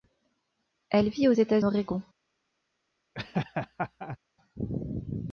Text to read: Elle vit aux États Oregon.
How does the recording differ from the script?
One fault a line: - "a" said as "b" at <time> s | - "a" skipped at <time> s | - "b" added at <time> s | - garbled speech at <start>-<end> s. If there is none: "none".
none